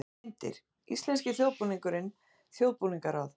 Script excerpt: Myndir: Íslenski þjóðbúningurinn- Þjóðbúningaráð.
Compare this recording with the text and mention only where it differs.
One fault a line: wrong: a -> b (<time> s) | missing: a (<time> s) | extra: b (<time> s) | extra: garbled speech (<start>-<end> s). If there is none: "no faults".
no faults